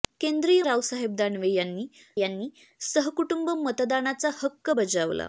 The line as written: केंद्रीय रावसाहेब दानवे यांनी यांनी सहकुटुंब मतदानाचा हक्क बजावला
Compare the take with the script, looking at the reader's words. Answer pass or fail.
pass